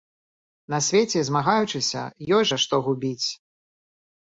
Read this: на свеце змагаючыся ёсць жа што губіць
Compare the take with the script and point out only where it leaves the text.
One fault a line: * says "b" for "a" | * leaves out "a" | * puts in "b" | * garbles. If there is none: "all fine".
all fine